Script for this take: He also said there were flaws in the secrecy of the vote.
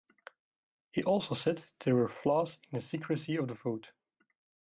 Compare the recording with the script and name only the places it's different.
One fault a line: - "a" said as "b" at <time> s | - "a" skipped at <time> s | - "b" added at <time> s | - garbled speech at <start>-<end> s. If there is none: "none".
none